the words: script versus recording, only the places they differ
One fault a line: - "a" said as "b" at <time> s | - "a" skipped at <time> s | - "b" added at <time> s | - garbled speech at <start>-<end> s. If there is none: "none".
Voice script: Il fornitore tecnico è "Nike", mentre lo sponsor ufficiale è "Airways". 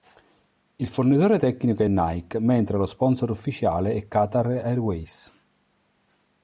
- "Qatar" added at 4.0 s